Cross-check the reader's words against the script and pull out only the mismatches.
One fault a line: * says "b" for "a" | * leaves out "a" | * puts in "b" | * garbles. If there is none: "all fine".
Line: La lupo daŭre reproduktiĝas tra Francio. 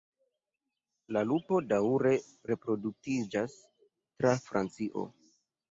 all fine